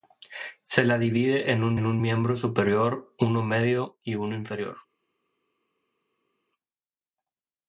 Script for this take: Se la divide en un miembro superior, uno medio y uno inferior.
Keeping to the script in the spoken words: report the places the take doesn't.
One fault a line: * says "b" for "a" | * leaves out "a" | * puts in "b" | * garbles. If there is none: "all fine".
* puts in "en un"